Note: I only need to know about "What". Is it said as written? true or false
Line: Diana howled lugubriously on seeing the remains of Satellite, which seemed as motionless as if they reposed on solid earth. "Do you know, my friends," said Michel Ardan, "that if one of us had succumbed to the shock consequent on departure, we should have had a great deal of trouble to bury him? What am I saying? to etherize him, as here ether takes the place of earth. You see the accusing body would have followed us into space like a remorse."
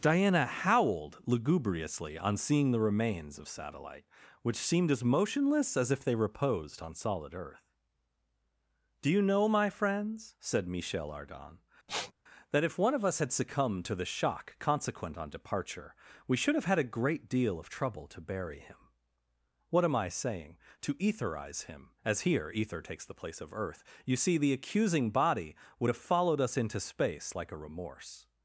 true